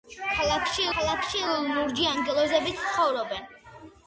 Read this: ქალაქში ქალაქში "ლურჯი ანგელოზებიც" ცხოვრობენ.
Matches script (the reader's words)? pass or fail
pass